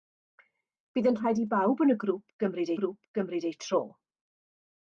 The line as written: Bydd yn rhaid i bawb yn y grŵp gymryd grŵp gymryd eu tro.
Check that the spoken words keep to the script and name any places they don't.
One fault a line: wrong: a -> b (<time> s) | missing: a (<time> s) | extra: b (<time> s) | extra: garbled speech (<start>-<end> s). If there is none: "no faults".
no faults